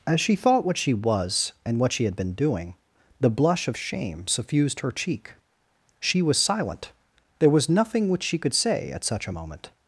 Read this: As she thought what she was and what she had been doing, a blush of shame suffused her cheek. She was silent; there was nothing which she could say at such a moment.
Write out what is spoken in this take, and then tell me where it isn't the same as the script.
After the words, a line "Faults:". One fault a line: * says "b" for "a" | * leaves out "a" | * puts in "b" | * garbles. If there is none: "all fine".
As she thought what she was and what she had been doing, the blush of shame suffused her cheek. She was silent; there was nothing which she could say at such a moment.
Faults:
* says "the" for "a"